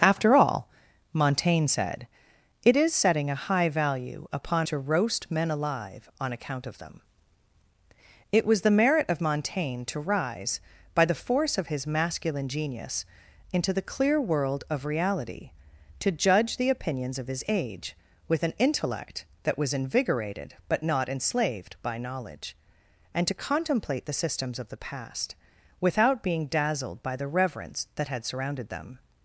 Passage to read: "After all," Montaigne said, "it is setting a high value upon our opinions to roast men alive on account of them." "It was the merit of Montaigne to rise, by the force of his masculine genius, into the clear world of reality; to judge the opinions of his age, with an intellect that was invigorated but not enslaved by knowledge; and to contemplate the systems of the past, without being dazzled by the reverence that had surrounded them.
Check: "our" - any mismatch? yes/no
yes